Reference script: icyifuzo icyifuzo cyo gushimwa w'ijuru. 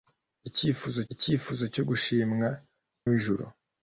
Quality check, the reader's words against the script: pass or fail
pass